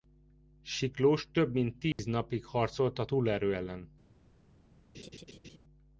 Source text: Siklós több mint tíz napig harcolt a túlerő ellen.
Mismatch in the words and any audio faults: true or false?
true